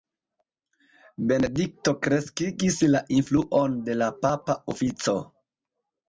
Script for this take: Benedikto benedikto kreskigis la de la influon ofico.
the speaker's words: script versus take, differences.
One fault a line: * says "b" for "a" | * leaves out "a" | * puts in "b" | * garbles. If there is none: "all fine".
* leaves out "benedikto"
* puts in "influon"
* says "papa" for "influon"